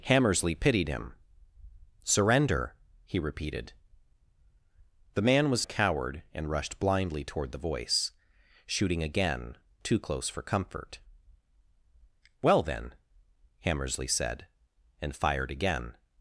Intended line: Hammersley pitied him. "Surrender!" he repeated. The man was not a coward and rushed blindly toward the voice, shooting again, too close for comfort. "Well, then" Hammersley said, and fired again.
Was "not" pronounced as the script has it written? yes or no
no